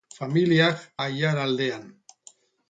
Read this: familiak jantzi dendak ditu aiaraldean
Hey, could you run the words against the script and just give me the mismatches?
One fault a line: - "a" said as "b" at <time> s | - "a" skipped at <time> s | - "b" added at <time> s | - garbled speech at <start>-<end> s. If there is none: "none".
- "jantzi dendak ditu" skipped at 0.8 s